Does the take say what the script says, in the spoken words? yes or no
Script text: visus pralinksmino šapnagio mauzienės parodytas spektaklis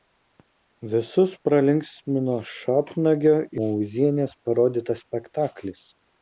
yes